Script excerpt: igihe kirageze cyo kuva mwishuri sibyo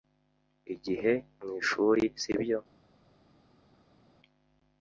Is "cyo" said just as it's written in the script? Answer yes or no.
no